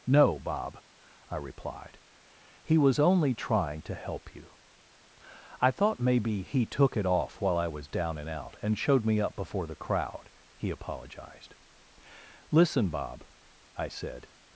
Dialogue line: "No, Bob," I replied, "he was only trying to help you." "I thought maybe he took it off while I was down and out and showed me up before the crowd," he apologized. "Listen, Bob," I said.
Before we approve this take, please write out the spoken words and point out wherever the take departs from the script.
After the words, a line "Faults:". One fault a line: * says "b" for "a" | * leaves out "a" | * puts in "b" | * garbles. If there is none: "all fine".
"No, Bob," I replied, "he was only trying to help you." "I thought maybe he took it off while I was down and out and showed me up before the crowd," he apologized. "Listen, Bob," I said.
Faults:
all fine